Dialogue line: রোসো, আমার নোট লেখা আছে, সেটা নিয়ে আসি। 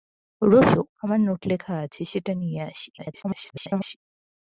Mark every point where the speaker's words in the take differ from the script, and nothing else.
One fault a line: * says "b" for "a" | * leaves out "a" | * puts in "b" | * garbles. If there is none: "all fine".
* garbles